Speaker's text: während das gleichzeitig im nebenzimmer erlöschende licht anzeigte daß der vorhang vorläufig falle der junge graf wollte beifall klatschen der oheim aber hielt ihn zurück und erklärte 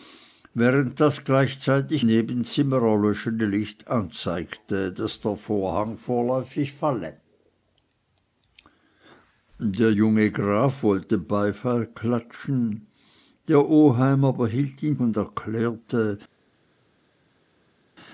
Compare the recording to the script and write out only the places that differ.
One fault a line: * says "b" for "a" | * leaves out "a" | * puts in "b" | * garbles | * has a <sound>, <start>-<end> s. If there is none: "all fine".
* leaves out "im"
* leaves out "zurück"